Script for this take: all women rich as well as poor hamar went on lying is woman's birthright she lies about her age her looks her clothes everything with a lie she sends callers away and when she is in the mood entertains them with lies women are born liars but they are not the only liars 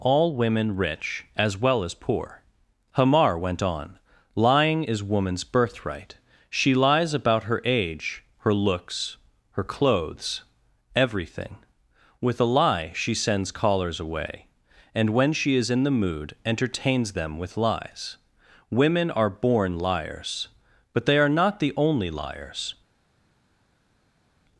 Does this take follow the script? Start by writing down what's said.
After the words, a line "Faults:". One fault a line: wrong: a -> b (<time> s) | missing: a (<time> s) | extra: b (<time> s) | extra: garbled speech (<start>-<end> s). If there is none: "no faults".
all women rich as well as poor hamar went on lying is woman's birthright she lies about her age her looks her clothes everything with a lie she sends callers away and when she is in the mood entertains them with lies women are born liars but they are not the only liars
Faults:
no faults